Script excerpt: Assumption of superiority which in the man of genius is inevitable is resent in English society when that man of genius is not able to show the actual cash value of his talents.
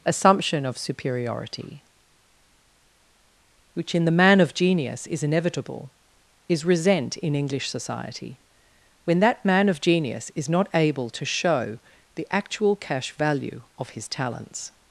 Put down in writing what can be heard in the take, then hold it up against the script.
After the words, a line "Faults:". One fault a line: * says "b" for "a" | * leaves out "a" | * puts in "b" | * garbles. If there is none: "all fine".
Assumption of superiority which in the man of genius is inevitable is resent in English society when that man of genius is not able to show the actual cash value of his talents.
Faults:
all fine